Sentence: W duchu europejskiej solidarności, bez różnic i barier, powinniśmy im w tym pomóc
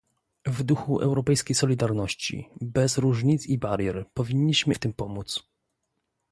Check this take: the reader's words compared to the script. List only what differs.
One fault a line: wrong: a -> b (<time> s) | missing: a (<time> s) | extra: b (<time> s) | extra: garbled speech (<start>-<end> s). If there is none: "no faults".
missing: im (4.8 s)